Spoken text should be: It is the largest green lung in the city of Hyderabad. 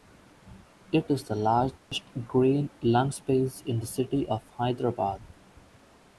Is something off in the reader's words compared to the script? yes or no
yes